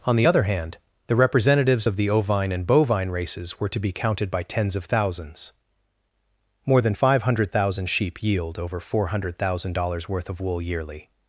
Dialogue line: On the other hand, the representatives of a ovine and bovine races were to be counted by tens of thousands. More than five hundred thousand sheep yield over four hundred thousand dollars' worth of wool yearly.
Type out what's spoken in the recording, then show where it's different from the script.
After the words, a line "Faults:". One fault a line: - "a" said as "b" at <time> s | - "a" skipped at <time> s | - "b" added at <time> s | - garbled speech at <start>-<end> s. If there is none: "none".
On the other hand, the representatives of the ovine and bovine races were to be counted by tens of thousands. More than five hundred thousand sheep yield over four hundred thousand dollars' worth of wool yearly.
Faults:
- "a" said as "the" at 2.0 s